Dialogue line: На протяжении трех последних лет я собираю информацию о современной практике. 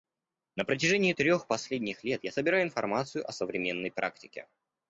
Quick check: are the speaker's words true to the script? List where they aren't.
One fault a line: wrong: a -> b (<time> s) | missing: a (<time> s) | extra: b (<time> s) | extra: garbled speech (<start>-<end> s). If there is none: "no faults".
no faults